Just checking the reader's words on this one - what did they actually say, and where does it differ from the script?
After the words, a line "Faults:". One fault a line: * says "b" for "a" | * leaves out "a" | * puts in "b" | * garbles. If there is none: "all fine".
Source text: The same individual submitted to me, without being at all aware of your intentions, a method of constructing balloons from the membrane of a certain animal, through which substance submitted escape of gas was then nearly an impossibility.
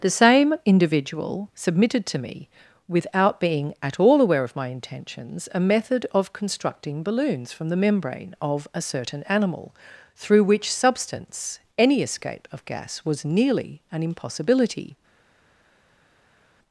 The same individual submitted to me, without being at all aware of my intentions, a method of constructing balloons from the membrane of a certain animal, through which substance any escape of gas was nearly an impossibility.
Faults:
* says "my" for "your"
* says "any" for "submitted"
* leaves out "then"